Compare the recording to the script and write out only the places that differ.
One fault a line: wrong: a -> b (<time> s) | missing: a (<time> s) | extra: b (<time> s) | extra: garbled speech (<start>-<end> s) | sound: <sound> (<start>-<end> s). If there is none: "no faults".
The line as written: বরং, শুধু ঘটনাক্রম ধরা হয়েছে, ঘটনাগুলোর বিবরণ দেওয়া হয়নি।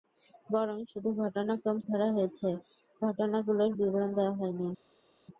no faults